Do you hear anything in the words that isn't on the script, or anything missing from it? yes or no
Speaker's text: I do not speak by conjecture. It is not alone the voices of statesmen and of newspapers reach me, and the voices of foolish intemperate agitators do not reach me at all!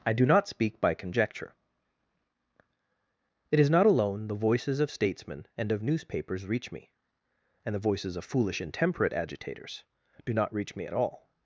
no